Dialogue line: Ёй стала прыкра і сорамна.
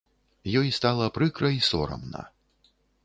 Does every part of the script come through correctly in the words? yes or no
yes